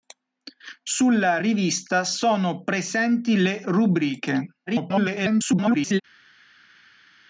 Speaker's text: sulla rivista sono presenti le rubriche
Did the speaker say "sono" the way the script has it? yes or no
yes